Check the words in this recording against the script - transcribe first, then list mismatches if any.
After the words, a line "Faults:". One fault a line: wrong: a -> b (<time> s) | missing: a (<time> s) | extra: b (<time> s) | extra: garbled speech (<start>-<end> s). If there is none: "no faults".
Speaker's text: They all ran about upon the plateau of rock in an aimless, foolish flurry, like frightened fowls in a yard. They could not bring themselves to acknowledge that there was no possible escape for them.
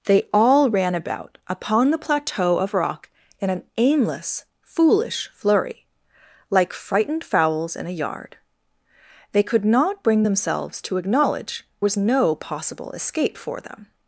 They all ran about upon the plateau of rock in an aimless, foolish flurry, like frightened fowls in a yard. They could not bring themselves to acknowledge was no possible escape for them.
Faults:
missing: that there (11.6 s)